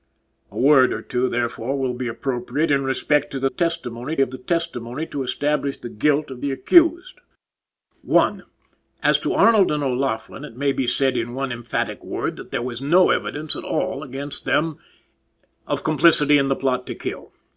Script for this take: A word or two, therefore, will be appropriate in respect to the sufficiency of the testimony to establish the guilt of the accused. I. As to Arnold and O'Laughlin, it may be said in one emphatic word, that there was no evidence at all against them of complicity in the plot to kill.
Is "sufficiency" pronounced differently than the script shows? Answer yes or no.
yes